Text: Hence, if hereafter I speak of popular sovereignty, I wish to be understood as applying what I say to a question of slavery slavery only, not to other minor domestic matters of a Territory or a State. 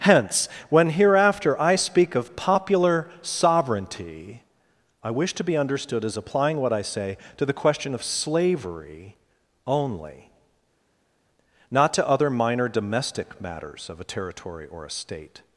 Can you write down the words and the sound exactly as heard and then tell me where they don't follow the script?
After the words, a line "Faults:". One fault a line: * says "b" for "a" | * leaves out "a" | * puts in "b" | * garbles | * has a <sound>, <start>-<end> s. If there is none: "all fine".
Hence, when hereafter I speak of popular sovereignty, I wish to be understood as applying what I say to the question of slavery only, not to other minor domestic matters of a Territory or a State.
Faults:
* says "when" for "if"
* says "the" for "a"
* leaves out "slavery"